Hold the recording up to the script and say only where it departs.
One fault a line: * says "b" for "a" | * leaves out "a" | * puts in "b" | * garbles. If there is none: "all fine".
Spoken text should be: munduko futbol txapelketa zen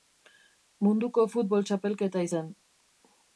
all fine